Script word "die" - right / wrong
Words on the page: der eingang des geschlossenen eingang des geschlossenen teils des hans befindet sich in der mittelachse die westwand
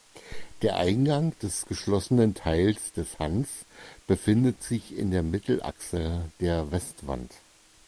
wrong